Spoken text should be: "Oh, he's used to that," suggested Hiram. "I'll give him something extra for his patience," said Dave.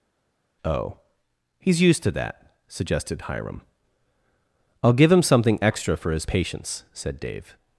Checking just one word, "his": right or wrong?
right